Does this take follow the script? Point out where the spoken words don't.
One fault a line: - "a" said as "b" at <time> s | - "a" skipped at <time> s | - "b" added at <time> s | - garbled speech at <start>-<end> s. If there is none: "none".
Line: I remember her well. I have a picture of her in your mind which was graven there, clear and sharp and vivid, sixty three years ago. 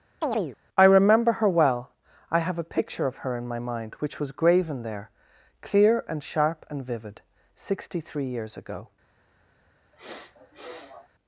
- "your" said as "my" at 3.5 s